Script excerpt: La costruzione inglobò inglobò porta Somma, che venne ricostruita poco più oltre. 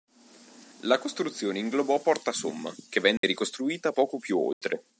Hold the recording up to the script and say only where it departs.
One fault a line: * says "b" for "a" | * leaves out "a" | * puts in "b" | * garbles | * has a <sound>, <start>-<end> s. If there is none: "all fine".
* leaves out "inglobò"
* has a dropout, 3.2-3.2 s
* has a dropout, 4.5-4.6 s